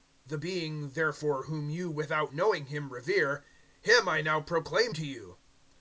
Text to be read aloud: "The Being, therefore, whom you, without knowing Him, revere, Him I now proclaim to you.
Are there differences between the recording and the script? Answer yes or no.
no